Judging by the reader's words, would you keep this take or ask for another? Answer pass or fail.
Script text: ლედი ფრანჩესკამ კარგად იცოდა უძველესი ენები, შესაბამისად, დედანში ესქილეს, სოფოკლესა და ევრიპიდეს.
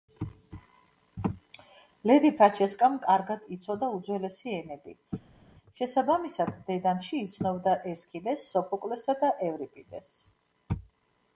fail